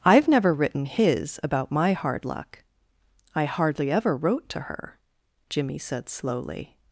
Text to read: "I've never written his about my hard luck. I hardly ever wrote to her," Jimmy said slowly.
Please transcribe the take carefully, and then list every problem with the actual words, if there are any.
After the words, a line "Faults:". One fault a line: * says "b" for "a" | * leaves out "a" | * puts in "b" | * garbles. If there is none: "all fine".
"I've never written his about my hard luck. I hardly ever wrote to her," Jimmy said slowly.
Faults:
all fine